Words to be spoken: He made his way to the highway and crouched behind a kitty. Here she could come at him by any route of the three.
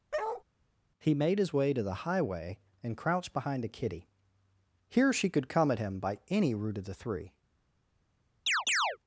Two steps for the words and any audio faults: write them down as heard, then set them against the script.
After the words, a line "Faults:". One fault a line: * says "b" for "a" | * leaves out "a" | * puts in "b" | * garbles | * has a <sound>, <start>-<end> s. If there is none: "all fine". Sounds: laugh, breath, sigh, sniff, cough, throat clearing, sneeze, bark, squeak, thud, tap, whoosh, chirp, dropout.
He made his way to the highway and crouched behind a kitty. Here she could come at him by any route of the three.
Faults:
* has a bark, 0.1-0.4 s
* has a chirp, 8.5-9.0 s